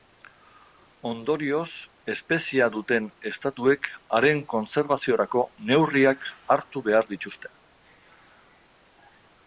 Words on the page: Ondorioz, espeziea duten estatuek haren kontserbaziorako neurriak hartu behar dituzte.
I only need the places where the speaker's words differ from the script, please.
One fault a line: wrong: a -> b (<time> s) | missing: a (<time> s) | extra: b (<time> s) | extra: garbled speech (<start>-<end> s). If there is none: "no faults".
no faults